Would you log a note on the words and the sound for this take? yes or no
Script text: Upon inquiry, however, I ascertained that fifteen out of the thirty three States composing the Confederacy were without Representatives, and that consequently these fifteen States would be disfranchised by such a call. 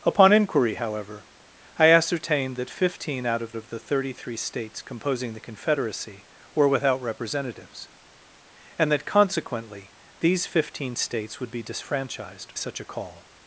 yes